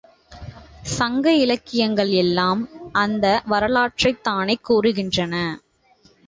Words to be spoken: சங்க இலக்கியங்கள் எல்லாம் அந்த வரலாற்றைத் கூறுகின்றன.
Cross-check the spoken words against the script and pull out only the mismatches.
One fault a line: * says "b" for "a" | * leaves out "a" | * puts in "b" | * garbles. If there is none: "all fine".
* puts in "தானே"